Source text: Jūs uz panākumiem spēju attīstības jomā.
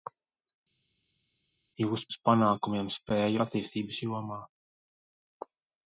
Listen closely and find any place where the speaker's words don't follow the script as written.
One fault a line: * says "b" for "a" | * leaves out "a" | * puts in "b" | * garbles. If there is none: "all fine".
all fine